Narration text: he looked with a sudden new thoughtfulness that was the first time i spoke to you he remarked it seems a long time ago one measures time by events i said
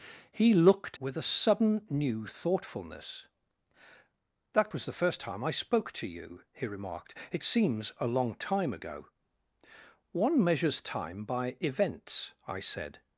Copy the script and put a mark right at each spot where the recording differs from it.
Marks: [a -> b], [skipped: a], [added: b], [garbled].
he looked with a sudden new thoughtfulness that was the first time i spoke to you he remarked it seems a long time ago one measures time by events i said